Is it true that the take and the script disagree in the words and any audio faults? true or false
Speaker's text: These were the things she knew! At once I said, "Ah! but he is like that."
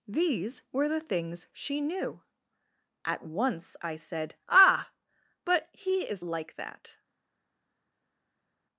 false